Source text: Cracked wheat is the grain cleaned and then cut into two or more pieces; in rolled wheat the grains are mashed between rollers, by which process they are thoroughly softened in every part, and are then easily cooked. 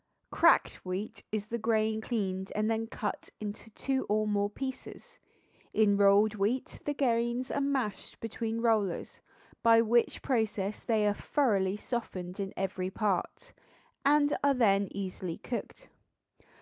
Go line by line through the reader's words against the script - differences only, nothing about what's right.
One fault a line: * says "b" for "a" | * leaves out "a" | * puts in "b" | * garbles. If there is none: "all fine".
all fine